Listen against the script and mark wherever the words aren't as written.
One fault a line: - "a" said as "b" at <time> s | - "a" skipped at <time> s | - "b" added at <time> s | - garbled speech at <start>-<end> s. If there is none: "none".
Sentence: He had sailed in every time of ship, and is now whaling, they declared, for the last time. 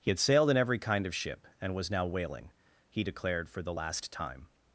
- "time" said as "kind" at 0.8 s
- "is" said as "was" at 1.7 s
- "they" said as "he" at 2.9 s